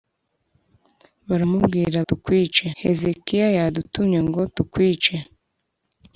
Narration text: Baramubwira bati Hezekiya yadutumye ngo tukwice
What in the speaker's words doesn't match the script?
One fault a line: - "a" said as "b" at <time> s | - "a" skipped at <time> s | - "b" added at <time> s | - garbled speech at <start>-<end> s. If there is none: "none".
- "bati" said as "tukwice" at 2.1 s